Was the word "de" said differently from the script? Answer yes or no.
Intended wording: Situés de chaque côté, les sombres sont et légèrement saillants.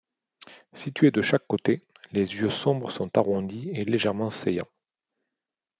no